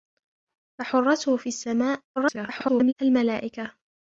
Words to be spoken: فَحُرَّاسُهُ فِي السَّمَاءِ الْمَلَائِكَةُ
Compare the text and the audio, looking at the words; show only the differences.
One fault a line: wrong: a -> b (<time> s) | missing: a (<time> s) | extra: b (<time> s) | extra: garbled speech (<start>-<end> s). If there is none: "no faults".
extra: garbled speech (2.2-2.9 s)